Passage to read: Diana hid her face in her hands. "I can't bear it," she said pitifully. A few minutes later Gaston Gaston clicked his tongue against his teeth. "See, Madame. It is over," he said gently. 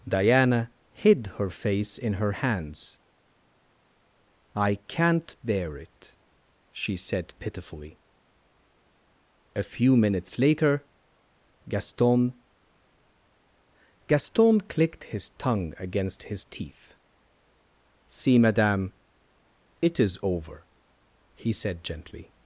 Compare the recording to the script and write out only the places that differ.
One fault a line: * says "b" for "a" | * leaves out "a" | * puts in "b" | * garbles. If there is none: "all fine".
all fine